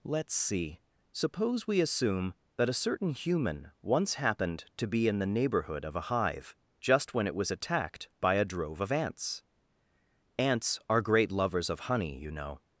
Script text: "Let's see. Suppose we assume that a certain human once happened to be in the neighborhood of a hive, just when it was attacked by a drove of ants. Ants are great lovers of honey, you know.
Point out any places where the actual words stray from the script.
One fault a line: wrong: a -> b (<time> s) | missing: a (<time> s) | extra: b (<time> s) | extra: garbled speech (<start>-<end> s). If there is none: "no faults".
no faults